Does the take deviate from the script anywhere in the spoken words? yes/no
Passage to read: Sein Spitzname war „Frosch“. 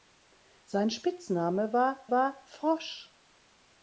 yes